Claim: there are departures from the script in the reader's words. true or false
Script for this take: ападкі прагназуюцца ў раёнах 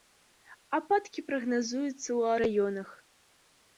false